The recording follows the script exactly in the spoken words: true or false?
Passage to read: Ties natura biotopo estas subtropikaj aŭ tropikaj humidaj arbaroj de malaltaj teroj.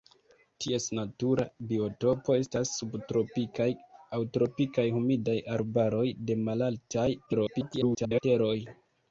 false